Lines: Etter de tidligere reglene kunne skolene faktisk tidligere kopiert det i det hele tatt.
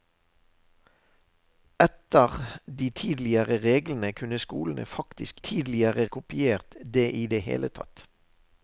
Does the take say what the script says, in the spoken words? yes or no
yes